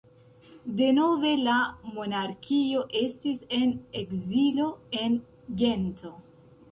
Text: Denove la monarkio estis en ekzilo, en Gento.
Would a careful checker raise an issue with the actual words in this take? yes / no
no